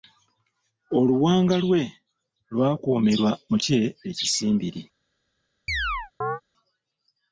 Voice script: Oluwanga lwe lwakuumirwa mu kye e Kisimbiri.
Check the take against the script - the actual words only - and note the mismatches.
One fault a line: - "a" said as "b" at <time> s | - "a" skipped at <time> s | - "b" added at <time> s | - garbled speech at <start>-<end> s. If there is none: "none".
none